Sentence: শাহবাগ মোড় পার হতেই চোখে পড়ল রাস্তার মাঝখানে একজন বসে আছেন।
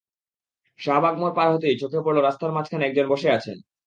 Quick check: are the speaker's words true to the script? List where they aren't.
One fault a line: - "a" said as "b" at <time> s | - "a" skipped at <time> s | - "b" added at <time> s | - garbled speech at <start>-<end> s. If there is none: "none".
none